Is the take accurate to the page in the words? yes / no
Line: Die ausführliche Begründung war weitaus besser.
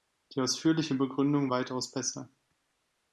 no